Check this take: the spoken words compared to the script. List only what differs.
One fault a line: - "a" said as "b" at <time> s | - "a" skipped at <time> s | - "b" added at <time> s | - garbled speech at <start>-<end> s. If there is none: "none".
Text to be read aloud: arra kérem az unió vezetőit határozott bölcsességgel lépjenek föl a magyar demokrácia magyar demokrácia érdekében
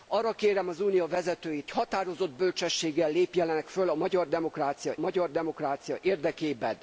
none